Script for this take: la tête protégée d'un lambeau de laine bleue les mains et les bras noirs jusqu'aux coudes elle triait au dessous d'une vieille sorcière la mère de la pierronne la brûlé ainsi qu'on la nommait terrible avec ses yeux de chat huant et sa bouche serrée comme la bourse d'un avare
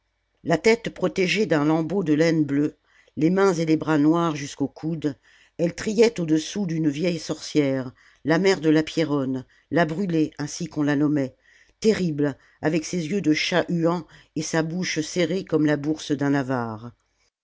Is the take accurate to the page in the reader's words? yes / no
yes